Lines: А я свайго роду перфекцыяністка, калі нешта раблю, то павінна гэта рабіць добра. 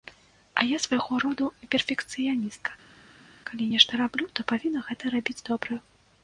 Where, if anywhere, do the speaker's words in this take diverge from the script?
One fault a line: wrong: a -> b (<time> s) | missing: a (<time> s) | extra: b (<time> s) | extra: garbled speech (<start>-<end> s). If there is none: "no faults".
no faults